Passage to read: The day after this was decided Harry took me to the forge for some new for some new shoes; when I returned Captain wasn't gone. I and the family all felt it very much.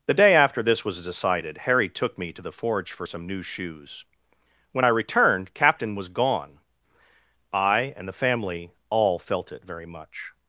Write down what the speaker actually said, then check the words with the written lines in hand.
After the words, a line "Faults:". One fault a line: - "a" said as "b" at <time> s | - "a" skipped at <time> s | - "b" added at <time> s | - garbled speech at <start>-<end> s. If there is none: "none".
The day after this was decided Harry took me to the forge for some new shoes; when I returned Captain was gone. I and the family all felt it very much.
Faults:
- "for some new" skipped at 3.4 s
- "wasn't" said as "was" at 5.9 s